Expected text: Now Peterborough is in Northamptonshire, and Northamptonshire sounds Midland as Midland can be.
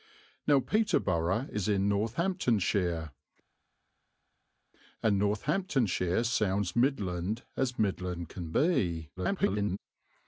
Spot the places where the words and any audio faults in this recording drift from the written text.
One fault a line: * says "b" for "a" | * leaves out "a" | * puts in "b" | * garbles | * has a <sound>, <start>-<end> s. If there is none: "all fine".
* garbles